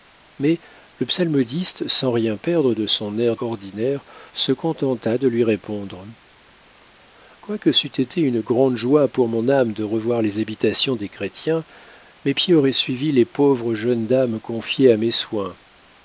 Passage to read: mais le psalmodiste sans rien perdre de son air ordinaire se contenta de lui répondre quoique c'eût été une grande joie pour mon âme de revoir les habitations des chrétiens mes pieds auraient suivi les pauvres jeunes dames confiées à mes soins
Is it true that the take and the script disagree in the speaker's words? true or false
false